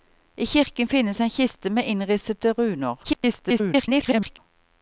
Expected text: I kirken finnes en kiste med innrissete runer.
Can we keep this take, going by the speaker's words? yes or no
no